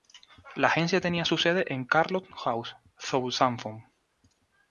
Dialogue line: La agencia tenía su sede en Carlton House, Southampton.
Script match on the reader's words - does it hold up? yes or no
yes